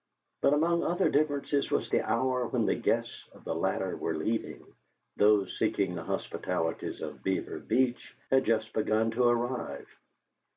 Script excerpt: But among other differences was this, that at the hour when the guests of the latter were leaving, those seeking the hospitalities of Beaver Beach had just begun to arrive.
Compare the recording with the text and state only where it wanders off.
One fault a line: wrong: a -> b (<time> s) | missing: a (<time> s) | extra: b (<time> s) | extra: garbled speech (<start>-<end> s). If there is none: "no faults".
missing: this that at (1.9 s)